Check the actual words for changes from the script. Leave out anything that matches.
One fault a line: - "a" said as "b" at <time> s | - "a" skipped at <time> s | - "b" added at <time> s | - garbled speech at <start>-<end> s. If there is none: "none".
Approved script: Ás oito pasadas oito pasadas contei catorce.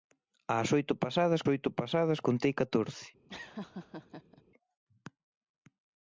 none